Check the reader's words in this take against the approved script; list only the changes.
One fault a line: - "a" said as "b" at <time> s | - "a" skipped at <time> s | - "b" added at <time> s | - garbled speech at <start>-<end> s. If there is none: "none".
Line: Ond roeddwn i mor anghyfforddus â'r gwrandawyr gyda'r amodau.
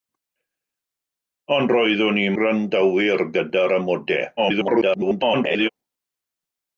- "mor anghyfforddus â'r" skipped at 2.2 s
- garbled speech at 4.4-5.7 s